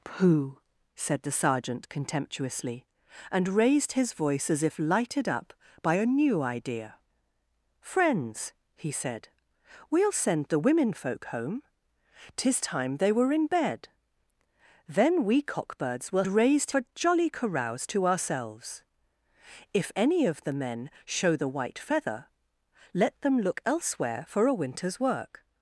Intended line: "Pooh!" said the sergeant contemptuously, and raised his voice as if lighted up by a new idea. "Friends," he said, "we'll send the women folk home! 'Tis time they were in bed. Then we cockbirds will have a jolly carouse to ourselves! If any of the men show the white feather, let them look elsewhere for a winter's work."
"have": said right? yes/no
no